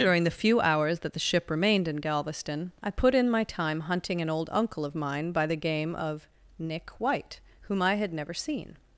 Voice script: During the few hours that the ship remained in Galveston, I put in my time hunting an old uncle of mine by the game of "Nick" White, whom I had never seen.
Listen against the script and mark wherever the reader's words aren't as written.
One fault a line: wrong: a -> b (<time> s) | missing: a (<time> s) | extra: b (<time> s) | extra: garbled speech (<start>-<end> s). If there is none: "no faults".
no faults